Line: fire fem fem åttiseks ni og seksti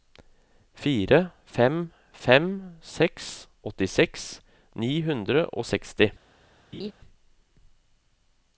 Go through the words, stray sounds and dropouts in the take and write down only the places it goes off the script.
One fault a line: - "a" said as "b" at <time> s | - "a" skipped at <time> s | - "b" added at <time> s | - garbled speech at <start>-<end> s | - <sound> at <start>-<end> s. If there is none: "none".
- "seks" added at 2.9 s
- "hundre" added at 5.1 s
- laugh at 6.7-6.9 s